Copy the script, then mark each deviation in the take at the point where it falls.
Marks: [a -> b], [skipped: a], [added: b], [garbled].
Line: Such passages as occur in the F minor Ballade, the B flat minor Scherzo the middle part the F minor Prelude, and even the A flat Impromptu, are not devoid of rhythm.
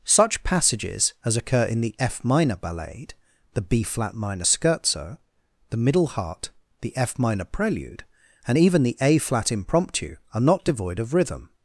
Such passages as occur in the F minor Ballade, the B flat minor Scherzo the middle [part -> heart] the F minor Prelude, and even the A flat Impromptu, are not devoid of rhythm.